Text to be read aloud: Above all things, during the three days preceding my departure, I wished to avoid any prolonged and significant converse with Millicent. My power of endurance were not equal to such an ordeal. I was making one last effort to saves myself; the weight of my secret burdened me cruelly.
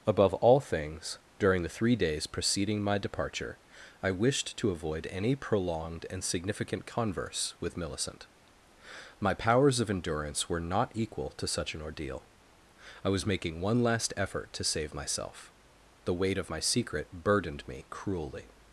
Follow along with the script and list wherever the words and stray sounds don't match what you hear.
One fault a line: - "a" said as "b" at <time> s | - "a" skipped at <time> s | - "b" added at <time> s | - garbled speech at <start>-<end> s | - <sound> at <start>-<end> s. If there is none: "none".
- "power" said as "powers" at 9.3 s
- "saves" said as "save" at 14.6 s